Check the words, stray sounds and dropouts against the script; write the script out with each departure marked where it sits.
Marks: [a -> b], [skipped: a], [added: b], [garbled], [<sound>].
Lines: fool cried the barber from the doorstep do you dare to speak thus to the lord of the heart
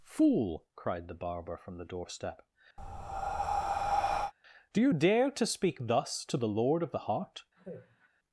fool cried the barber from the doorstep [breath] do you dare to speak thus to the lord of the heart [sigh]